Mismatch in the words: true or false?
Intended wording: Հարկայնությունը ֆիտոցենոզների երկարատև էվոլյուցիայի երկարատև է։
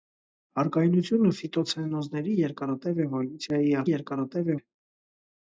false